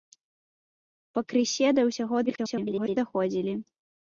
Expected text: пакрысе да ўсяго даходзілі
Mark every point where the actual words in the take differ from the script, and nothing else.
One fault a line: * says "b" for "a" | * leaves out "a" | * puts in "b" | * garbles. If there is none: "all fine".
* garbles